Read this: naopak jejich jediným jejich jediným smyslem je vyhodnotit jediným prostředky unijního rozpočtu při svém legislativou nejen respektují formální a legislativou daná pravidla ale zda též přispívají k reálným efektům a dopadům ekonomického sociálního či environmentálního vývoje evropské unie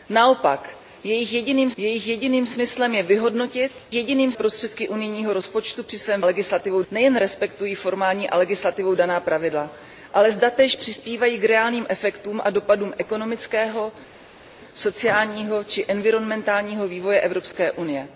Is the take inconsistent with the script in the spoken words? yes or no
no